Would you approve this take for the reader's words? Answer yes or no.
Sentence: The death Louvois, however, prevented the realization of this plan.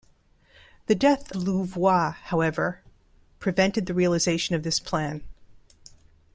yes